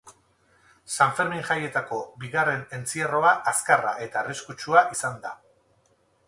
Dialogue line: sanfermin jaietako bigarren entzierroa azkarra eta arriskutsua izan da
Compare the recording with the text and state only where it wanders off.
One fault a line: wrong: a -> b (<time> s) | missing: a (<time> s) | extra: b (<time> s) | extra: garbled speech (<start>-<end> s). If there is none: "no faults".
no faults